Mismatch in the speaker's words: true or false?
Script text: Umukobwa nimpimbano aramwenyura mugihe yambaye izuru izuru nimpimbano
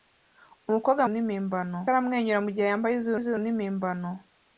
false